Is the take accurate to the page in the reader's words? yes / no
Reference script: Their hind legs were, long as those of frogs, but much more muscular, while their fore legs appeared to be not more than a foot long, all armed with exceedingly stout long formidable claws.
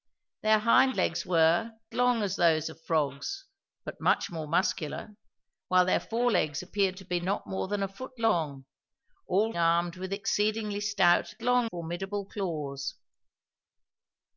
yes